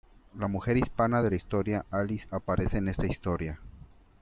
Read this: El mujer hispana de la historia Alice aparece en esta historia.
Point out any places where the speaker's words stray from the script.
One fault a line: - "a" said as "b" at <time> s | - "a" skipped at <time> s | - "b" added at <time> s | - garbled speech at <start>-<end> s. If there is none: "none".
- "El" said as "La" at 0.3 s